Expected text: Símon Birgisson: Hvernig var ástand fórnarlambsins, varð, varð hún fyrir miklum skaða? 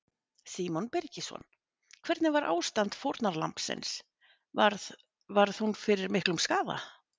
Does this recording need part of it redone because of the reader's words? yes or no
no